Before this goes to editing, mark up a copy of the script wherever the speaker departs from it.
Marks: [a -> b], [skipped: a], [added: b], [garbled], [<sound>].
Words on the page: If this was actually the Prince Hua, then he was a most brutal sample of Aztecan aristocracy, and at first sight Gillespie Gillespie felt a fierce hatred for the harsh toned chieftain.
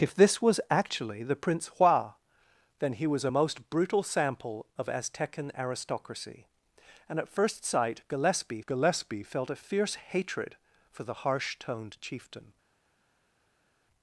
If this was actually the Prince Hua, then he was a most brutal sample of Aztecan aristocracy, and at first sight Gillespie Gillespie felt a fierce hatred for the harsh toned chieftain.